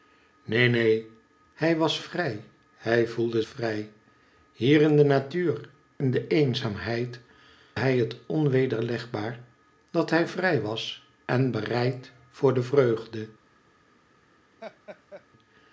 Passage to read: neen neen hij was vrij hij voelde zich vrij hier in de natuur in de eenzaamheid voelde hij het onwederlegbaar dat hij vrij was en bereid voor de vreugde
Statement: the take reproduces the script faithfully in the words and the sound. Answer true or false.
false